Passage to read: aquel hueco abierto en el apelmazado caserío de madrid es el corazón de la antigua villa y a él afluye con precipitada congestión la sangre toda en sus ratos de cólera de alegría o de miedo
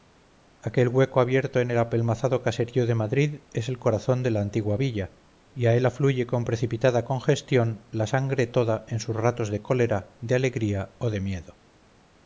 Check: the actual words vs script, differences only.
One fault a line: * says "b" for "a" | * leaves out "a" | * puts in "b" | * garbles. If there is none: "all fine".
all fine